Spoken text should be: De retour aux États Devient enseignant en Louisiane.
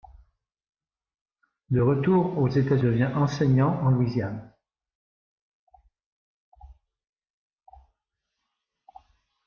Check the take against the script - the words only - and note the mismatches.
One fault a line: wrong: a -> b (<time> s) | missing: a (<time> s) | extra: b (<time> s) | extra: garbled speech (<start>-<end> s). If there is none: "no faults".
no faults